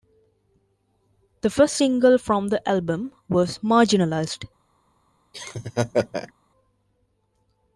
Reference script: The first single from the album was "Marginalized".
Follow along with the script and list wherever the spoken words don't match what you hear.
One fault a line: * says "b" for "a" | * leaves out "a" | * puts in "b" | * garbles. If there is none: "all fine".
all fine